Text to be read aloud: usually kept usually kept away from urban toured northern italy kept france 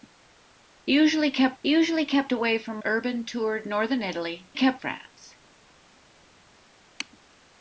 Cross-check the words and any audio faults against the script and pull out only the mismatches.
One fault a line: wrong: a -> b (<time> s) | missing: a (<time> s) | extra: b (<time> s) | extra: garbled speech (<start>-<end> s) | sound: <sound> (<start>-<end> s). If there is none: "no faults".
no faults